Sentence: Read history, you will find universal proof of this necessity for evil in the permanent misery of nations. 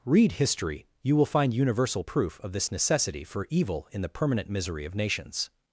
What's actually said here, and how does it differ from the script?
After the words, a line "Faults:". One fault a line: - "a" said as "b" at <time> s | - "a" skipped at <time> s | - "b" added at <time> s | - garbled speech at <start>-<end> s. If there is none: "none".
Read history, you will find universal proof of this necessity for evil in the permanent misery of nations.
Faults:
none